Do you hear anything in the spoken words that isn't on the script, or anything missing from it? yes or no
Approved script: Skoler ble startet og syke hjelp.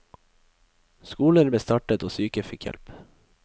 yes